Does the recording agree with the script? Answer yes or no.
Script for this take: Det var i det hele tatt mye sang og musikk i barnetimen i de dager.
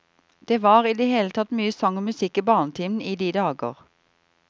yes